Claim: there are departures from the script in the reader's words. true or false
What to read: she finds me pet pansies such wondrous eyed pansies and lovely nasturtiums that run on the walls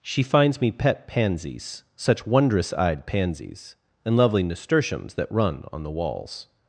false